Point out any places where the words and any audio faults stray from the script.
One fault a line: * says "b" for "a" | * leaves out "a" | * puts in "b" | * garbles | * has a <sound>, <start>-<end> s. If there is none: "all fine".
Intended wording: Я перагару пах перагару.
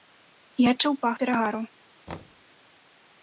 * says "адчуў" for "перагару"
* has a thud, 2.1-2.4 s